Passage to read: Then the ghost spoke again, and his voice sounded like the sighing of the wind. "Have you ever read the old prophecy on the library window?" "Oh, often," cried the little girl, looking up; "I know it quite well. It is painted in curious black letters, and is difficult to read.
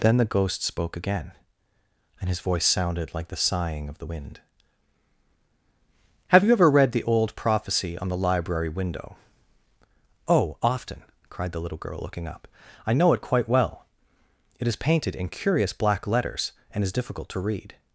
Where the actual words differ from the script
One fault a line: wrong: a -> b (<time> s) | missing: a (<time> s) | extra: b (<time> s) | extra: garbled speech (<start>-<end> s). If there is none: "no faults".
no faults